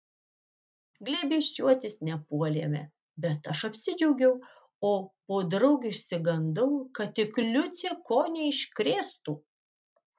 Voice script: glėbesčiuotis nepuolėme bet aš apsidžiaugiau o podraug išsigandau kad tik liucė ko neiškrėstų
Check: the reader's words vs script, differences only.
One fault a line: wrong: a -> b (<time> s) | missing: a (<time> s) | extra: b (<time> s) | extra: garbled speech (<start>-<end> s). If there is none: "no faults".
no faults